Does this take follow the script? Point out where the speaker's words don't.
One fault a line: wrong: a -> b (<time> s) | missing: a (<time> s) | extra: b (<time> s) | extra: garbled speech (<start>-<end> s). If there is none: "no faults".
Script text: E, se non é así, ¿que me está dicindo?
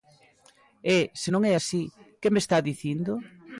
no faults